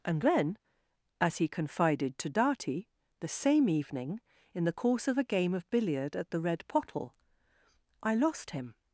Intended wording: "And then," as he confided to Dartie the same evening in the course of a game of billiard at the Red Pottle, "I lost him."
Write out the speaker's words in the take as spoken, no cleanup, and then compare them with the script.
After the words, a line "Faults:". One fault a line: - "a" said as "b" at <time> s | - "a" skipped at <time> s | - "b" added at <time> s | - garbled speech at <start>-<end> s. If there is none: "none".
"And then," as he confided to Dartie the same evening in the course of a game of billiard at the Red Pottle, "I lost him."
Faults:
none